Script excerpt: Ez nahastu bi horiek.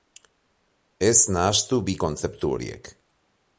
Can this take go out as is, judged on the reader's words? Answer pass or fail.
fail